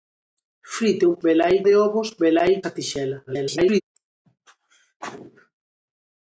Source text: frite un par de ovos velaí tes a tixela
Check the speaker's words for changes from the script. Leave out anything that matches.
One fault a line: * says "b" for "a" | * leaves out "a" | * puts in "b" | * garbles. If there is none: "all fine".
* says "velaí" for "par"
* leaves out "tes"
* garbles